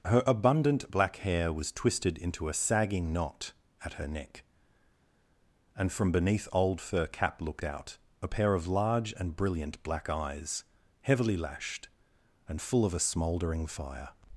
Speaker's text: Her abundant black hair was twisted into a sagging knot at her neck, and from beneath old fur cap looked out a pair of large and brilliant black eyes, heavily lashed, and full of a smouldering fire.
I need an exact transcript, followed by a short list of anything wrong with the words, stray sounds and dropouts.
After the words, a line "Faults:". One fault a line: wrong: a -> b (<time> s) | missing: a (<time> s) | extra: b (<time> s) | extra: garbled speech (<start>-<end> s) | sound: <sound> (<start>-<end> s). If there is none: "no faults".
Her abundant black hair was twisted into a sagging knot at her neck, and from beneath old fur cap looked out a pair of large and brilliant black eyes, heavily lashed, and full of a smouldering fire.
Faults:
no faults